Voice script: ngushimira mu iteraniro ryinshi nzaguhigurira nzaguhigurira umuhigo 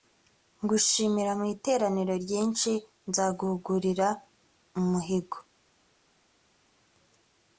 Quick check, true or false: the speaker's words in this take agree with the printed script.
false